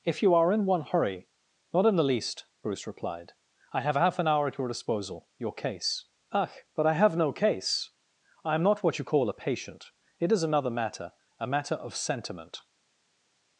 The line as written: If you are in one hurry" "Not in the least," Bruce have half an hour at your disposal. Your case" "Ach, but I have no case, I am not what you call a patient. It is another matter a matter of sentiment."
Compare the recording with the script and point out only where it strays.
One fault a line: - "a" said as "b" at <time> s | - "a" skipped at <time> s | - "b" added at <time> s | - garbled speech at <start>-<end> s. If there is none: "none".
- "replied I" added at 2.9 s